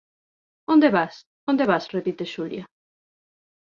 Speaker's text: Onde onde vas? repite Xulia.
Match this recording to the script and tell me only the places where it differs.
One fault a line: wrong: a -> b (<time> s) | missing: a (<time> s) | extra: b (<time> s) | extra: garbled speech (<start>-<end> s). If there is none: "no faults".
extra: vas (0.9 s)